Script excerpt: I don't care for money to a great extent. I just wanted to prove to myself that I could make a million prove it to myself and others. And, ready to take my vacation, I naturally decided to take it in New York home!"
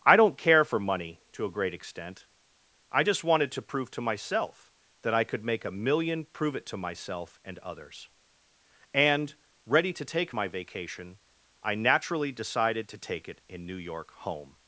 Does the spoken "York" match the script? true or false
true